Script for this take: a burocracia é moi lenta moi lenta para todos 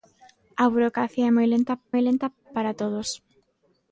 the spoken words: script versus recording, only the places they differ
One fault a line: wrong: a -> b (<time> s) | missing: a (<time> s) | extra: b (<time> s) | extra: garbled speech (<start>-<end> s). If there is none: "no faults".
no faults